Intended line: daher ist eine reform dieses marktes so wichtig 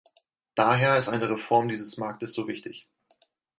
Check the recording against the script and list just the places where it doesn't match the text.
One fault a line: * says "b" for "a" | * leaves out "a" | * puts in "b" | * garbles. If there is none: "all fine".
all fine